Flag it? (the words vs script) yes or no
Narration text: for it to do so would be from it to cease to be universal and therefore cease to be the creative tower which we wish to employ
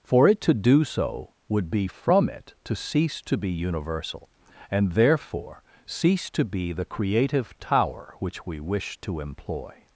no